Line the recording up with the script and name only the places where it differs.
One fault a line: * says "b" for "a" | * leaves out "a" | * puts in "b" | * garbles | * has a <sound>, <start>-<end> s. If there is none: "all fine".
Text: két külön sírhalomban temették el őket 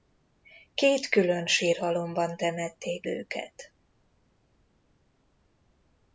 * leaves out "el"